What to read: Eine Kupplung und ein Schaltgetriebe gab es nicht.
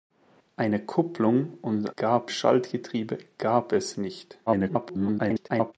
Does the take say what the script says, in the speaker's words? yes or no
no